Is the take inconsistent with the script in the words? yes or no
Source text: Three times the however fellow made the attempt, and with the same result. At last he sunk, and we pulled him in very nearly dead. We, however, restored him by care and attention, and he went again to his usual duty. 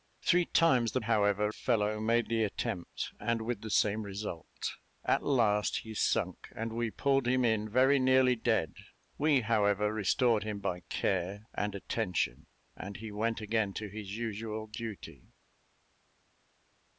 no